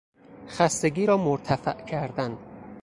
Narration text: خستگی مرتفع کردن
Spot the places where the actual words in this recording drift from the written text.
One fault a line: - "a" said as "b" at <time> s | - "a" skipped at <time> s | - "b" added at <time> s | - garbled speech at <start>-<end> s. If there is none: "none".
- "را" added at 1.1 s